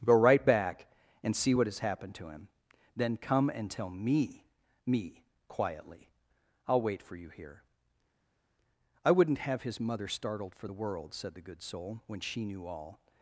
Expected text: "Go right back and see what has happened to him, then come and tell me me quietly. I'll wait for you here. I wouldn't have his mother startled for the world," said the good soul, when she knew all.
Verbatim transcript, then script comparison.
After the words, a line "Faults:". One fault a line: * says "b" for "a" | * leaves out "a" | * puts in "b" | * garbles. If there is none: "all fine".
"Go right back and see what has happened to him, then come and tell me me quietly. I'll wait for you here. I wouldn't have his mother startled for the world," said the good soul, when she knew all.
Faults:
all fine